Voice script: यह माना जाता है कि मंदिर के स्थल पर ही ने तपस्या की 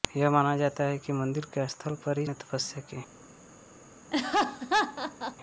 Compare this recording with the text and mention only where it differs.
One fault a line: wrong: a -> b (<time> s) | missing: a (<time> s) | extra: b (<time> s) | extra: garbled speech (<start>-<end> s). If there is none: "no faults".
no faults